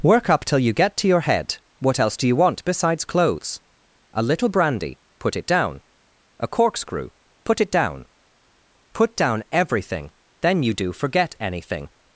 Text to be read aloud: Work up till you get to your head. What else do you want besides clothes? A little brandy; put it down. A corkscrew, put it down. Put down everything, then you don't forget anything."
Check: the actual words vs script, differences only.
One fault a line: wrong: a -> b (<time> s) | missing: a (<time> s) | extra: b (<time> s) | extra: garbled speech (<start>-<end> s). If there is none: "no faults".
wrong: don't -> do (10.7 s)